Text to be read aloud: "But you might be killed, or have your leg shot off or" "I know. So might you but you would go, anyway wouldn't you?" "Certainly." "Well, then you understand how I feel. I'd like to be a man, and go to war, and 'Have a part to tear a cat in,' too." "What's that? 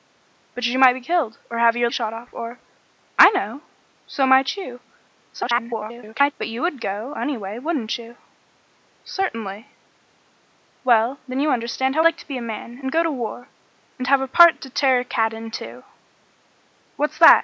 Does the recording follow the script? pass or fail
fail